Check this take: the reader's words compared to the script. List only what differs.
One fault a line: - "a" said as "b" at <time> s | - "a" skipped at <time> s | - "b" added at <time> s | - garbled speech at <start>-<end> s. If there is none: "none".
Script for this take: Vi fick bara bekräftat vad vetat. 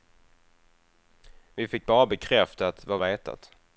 none